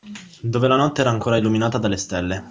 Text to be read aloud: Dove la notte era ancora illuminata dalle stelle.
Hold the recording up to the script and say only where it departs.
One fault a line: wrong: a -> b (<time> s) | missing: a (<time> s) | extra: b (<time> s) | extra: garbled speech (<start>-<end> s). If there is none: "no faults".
no faults